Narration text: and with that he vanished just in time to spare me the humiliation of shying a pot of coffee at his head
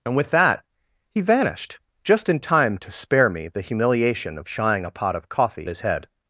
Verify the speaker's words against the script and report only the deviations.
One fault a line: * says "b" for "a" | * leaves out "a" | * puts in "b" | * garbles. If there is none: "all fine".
* leaves out "at"